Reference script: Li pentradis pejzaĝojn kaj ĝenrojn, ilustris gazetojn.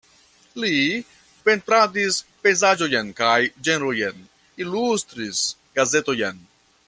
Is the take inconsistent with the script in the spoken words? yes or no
no